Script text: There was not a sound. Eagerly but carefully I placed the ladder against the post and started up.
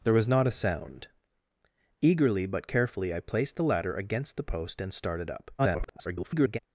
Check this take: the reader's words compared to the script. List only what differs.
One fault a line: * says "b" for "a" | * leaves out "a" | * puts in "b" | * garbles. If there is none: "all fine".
* garbles